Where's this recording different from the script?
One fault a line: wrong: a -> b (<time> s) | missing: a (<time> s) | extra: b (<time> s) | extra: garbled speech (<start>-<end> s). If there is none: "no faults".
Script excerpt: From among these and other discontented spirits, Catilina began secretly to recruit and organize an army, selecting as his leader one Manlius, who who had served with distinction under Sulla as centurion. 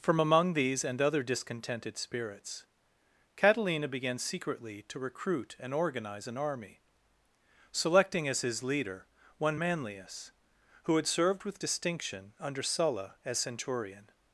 missing: who (11.0 s)